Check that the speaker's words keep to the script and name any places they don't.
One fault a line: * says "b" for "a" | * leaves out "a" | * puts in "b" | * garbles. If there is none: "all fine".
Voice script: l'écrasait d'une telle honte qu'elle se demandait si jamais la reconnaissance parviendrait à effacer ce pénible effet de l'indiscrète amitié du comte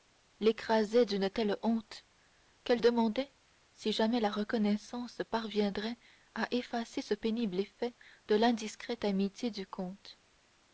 * leaves out "se"